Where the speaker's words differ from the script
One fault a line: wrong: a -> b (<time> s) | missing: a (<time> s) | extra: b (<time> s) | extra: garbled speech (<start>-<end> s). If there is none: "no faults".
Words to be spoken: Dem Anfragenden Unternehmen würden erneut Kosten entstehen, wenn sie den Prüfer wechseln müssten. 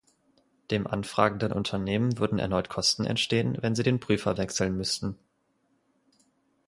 no faults